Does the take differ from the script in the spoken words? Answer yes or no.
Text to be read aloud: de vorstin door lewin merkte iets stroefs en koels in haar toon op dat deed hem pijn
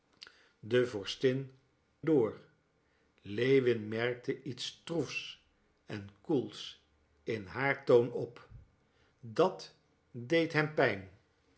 no